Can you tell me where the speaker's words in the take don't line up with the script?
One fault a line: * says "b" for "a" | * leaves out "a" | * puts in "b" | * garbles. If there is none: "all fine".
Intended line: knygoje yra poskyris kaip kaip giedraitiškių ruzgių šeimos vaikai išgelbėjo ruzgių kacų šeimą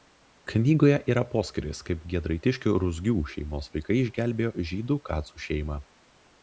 * leaves out "kaip"
* says "žydų" for "ruzgių"